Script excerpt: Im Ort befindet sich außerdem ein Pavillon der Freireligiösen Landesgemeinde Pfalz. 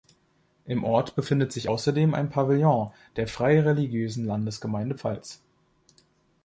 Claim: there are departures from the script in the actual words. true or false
false